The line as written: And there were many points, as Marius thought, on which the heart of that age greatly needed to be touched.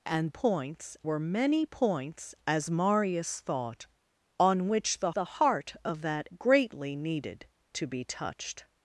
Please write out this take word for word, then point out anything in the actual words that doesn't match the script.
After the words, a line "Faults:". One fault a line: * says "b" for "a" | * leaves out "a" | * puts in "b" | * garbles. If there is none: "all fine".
And points were many points, as Marius thought, on which the the heart of that greatly needed to be touched.
Faults:
* says "points" for "there"
* puts in "the"
* leaves out "age"